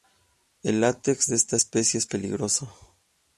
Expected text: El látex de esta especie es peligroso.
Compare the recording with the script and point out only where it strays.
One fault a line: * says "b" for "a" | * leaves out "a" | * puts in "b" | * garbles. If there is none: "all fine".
all fine